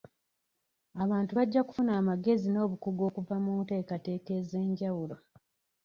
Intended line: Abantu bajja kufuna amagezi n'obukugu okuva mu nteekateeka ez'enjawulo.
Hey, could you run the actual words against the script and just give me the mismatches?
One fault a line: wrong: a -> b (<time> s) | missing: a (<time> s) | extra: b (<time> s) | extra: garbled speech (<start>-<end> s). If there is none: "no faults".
no faults